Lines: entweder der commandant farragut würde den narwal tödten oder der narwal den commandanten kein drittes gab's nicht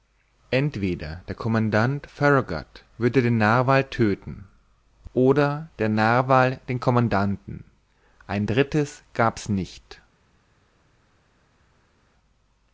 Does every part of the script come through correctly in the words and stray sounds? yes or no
no